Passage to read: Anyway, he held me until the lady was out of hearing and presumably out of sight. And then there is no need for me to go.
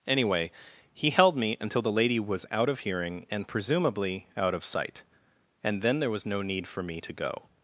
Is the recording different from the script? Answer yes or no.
yes